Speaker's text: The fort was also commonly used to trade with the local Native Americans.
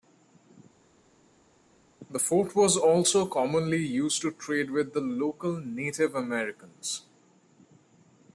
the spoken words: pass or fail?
pass